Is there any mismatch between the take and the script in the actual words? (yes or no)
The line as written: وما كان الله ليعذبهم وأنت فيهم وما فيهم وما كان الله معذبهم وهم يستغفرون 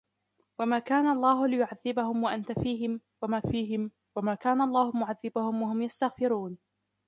no